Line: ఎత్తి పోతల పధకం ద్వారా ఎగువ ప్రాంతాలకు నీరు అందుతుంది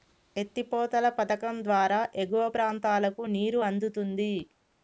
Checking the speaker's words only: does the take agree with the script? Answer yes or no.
yes